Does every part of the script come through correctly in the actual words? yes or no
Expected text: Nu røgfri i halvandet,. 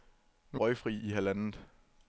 yes